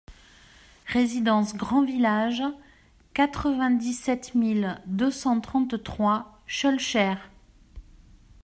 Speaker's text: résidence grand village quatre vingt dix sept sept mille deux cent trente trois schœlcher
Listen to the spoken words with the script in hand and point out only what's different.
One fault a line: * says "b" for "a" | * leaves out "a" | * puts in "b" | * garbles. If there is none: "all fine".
* leaves out "sept"